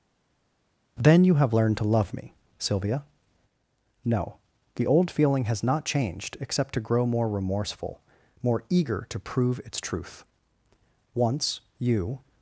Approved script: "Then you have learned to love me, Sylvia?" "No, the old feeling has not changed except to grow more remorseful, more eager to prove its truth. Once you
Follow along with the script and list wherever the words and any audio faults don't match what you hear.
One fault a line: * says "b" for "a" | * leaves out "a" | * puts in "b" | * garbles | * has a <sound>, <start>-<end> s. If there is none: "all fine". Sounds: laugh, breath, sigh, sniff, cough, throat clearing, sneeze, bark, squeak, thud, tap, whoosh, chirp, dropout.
all fine